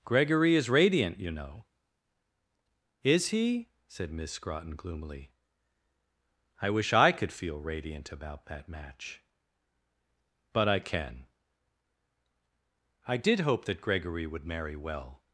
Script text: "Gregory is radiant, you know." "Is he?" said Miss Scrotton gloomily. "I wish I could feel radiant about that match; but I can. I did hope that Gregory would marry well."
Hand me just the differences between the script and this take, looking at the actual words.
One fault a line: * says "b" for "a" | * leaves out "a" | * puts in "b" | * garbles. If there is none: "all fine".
all fine